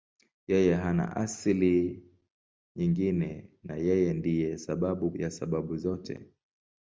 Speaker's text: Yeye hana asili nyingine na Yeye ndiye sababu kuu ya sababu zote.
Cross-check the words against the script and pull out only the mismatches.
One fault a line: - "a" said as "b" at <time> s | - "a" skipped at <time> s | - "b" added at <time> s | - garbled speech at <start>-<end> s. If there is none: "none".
- "kuu" skipped at 5.1 s